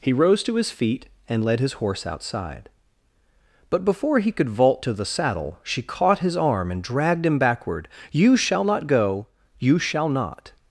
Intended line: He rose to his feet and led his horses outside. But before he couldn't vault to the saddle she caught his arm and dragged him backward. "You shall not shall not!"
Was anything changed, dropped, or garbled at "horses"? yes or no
yes